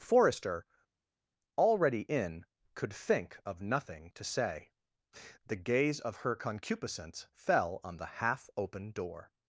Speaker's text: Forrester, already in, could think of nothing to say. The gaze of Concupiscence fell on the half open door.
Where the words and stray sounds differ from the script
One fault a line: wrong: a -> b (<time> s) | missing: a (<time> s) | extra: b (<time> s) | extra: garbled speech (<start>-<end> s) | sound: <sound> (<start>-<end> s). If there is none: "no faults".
extra: Her (6.2 s)